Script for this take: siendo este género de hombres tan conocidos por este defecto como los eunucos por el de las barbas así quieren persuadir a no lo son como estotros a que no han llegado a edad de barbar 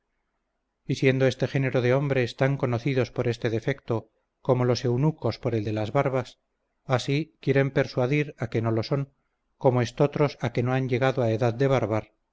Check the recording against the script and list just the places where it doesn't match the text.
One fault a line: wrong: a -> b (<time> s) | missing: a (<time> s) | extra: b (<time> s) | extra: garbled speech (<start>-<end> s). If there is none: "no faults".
extra: que (8.5 s)